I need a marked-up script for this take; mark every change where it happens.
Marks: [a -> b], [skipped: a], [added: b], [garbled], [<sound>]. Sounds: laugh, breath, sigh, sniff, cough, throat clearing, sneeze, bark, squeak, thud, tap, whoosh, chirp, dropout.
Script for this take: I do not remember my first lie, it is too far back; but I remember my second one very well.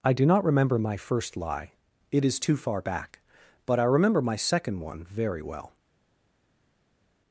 I do not remember my first lie, it is too far back; but I remember my second one very well.